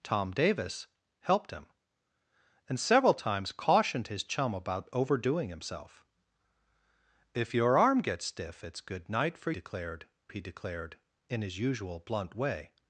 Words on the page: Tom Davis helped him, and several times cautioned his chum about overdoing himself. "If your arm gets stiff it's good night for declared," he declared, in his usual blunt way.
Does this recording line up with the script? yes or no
yes